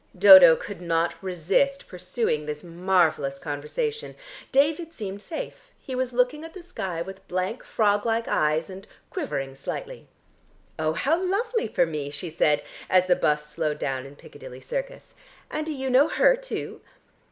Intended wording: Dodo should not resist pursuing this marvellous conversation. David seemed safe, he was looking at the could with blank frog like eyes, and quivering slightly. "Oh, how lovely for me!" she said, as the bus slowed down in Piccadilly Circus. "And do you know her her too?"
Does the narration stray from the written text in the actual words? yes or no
yes